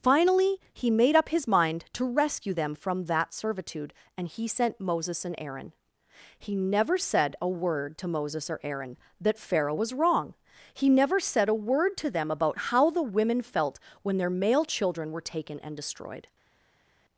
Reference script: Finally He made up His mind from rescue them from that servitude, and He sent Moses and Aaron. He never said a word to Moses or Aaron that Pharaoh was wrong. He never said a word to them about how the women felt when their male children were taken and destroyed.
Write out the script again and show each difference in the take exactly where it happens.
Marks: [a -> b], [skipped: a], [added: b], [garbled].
Finally He made up His mind [from -> to] rescue them from that servitude, and He sent Moses and Aaron. He never said a word to Moses or Aaron that Pharaoh was wrong. He never said a word to them about how the women felt when their male children were taken and destroyed.